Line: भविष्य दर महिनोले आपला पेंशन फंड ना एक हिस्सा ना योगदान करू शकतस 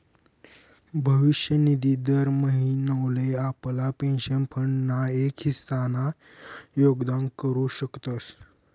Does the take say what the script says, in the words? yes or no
no